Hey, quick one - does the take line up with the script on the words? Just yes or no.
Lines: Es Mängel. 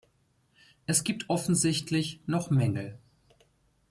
no